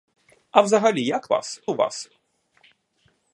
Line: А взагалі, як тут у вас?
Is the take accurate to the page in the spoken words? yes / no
no